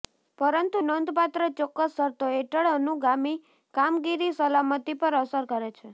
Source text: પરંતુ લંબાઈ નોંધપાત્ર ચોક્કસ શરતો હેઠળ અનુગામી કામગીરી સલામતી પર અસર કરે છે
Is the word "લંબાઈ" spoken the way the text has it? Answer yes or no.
no